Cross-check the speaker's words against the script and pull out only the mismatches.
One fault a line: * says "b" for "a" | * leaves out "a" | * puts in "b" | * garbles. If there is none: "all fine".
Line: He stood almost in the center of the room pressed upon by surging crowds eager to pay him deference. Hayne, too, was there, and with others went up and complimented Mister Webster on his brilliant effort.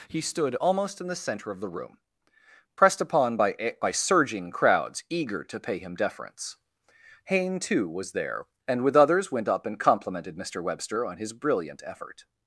* puts in "by"